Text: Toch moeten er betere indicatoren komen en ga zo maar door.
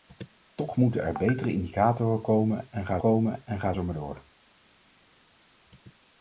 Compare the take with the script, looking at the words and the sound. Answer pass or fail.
fail